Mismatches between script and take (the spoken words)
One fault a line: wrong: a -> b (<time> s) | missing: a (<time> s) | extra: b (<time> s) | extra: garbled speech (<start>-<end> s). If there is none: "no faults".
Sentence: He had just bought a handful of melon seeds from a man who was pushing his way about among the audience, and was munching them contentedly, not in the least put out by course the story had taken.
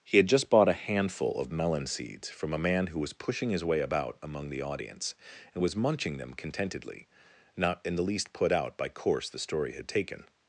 no faults